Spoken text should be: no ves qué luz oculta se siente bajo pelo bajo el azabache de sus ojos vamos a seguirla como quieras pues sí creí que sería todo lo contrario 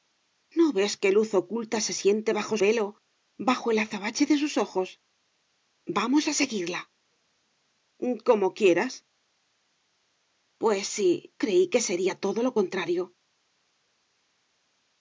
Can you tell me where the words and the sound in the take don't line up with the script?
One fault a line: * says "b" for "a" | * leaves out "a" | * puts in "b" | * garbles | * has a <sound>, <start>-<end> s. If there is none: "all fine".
all fine